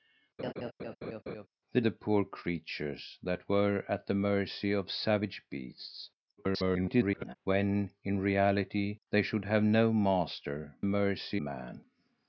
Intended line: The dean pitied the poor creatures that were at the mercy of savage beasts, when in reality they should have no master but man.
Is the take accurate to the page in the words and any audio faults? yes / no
no